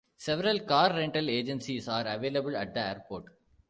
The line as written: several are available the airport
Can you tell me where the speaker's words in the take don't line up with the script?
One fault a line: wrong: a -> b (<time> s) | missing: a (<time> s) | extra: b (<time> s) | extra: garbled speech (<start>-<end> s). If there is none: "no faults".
extra: car rental agencies (0.6 s)
extra: at (2.5 s)